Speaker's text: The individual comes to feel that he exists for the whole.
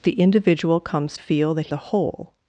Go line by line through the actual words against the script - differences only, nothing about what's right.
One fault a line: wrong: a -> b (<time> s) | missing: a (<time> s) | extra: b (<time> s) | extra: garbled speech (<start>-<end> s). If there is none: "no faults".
missing: to (1.1 s)
missing: he exists for (1.7 s)